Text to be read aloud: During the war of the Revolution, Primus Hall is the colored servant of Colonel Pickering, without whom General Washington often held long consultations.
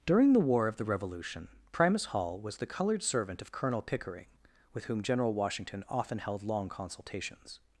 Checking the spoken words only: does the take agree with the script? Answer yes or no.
no